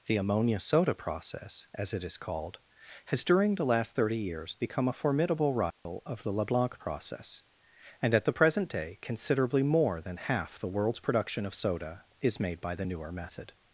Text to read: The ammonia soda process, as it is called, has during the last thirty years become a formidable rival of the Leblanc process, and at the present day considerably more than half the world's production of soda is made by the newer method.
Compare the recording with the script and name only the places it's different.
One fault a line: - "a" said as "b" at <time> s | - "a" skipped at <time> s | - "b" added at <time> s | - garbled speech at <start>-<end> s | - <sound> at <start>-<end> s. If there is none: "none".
- dropout at 5.7-5.9 s